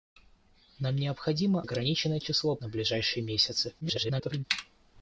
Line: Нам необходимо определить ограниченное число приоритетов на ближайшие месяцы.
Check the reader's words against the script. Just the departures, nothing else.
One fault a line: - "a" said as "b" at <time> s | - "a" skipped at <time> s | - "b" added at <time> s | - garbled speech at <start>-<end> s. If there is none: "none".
- "определить" skipped at 1.6 s
- "приоритетов" skipped at 2.6 s
- garbled speech at 3.8-4.5 s